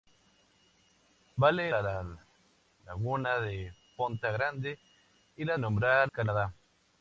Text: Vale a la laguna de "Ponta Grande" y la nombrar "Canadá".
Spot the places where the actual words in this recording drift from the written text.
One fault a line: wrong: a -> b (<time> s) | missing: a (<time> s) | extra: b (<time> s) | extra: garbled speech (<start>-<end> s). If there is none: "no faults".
no faults